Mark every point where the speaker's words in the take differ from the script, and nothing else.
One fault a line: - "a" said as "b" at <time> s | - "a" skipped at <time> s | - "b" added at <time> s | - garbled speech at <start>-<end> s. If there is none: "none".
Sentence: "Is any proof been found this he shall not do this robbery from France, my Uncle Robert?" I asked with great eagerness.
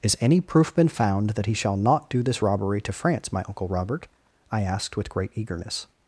- "this" said as "that" at 1.3 s
- "from" said as "to" at 2.8 s